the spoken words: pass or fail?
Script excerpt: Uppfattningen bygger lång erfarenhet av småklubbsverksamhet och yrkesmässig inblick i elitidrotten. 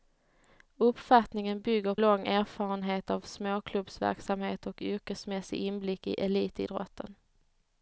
pass